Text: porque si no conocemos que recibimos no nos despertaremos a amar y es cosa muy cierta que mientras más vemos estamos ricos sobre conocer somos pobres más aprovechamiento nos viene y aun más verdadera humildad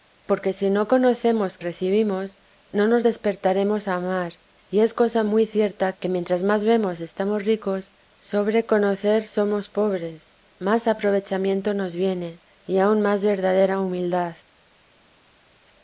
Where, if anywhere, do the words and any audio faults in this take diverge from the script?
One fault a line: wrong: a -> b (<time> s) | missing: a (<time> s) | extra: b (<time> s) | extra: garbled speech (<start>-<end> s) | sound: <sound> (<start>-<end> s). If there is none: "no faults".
missing: que (1.6 s)